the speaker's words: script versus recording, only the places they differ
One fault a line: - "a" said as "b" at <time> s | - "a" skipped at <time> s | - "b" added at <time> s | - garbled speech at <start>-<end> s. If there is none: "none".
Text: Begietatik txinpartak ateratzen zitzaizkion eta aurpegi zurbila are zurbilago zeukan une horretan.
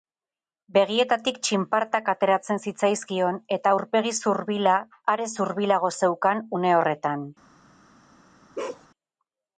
none